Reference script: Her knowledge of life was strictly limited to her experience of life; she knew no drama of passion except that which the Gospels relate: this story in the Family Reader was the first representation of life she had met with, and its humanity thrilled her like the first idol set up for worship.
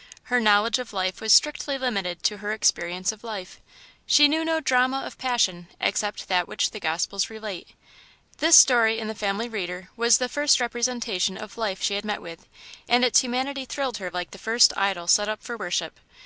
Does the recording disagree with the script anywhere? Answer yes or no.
no